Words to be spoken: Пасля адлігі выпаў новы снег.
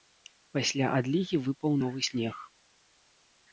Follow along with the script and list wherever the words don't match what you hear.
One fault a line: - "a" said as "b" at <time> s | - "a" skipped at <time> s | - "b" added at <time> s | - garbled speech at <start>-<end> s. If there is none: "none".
none